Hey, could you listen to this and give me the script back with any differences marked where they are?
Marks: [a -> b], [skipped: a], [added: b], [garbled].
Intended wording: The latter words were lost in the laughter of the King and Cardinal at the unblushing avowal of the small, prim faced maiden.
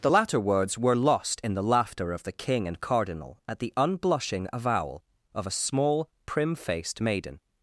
The latter words were lost in the laughter of the King and Cardinal at the unblushing avowal of [the -> a] small, prim faced maiden.